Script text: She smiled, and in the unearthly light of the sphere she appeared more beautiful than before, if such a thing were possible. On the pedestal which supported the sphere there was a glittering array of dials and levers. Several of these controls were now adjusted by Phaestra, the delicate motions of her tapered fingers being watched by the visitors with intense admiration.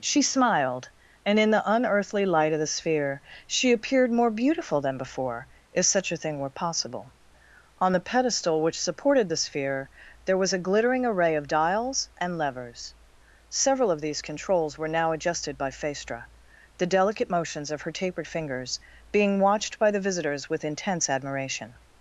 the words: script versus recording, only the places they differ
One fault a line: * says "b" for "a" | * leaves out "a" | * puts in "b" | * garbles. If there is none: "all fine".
all fine